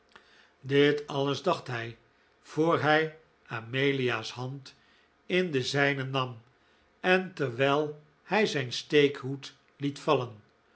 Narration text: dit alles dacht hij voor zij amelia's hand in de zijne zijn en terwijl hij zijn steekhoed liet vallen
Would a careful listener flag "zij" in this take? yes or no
yes